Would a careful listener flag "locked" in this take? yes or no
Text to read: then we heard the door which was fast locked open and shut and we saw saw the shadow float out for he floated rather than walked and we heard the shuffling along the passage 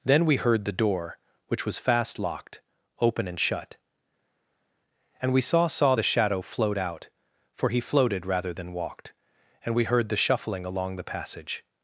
no